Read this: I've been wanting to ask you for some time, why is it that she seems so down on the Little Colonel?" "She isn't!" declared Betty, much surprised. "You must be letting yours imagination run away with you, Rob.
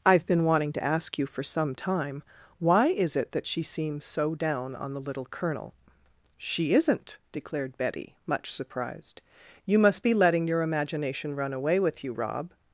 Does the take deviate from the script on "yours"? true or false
true